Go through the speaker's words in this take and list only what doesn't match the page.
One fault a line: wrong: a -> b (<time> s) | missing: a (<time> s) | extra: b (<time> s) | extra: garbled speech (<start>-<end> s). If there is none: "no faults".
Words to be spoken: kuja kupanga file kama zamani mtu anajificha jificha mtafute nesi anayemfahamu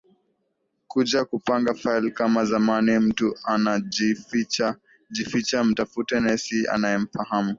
no faults